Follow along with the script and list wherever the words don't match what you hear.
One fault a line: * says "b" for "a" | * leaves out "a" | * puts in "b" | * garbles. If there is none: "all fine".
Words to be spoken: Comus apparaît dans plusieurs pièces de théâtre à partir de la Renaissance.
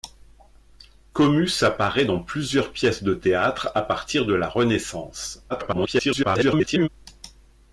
* garbles